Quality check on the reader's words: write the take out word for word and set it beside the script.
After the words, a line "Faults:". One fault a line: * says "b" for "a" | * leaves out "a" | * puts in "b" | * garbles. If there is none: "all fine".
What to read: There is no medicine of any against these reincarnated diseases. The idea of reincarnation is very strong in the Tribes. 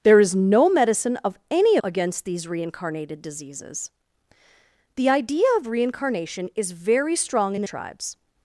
There is no medicine of any against these reincarnated diseases. The idea of reincarnation is very strong in the Tribes.
Faults:
all fine